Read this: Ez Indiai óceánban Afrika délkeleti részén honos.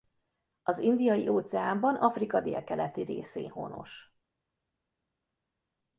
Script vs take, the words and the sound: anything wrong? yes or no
yes